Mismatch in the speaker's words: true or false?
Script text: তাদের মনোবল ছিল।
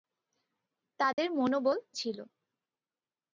false